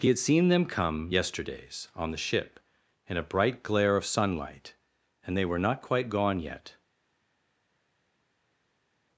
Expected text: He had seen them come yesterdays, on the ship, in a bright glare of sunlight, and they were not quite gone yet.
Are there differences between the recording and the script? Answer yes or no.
no